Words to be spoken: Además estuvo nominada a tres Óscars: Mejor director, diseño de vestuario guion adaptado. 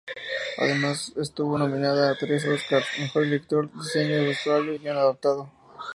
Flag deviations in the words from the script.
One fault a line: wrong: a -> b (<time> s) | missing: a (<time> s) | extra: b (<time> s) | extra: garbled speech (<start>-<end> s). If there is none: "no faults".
no faults